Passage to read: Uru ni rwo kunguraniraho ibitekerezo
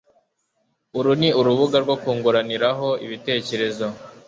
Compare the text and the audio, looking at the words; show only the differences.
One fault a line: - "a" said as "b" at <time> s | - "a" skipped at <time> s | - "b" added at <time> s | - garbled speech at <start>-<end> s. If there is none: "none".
- "urubuga" added at 1.4 s